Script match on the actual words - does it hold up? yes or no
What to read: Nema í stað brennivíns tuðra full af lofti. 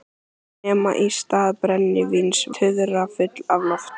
yes